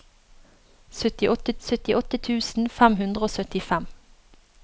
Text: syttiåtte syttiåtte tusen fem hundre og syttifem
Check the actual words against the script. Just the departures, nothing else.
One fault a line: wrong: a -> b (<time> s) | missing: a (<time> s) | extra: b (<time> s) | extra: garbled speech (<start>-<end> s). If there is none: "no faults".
no faults